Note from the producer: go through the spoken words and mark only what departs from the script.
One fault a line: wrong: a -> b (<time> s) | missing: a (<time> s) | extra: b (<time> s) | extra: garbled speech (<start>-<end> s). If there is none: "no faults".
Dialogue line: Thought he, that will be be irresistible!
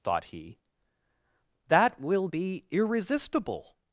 missing: be (2.6 s)